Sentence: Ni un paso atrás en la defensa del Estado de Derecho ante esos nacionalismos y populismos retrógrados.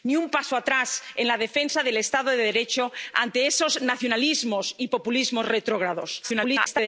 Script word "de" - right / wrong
right